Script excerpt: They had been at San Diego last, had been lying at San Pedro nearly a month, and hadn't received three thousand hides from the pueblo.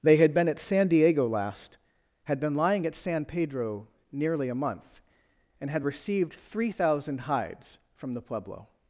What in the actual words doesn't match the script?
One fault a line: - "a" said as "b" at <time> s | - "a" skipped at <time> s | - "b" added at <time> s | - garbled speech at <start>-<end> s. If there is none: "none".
- "hadn't" said as "had" at 5.7 s